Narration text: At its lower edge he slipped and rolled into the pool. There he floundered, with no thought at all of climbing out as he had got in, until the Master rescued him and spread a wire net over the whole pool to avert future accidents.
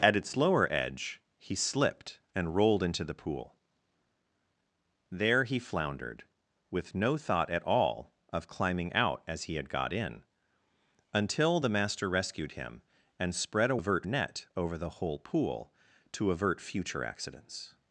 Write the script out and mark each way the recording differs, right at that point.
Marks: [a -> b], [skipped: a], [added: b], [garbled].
At its lower edge he slipped and rolled into the pool. There he floundered, with no thought at all of climbing out as he had got in, until the Master rescued him and spread a [wire -> avert] net over the whole pool to avert future accidents.